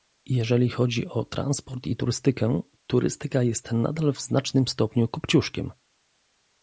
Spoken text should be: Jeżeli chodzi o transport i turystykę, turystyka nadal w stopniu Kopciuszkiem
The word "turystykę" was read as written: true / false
true